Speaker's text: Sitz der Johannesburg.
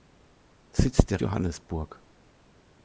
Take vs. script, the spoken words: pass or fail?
pass